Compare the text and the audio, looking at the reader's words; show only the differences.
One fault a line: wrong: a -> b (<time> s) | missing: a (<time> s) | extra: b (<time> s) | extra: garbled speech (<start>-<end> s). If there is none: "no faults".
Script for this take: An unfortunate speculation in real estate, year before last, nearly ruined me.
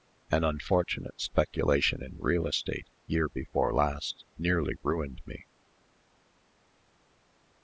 no faults